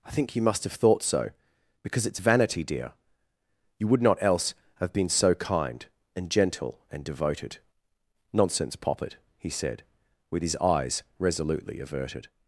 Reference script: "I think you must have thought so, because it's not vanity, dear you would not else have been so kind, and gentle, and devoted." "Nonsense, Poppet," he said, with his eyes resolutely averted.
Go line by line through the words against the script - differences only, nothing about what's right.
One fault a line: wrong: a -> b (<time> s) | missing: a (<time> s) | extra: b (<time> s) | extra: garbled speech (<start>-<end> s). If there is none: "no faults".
missing: not (2.2 s)